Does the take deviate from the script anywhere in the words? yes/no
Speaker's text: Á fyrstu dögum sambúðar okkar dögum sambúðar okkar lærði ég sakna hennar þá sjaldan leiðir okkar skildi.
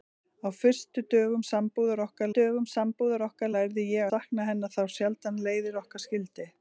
no